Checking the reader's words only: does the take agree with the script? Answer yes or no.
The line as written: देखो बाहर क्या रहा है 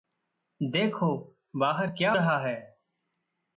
yes